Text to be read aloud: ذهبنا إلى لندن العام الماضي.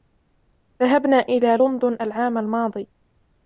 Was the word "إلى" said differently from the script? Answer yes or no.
no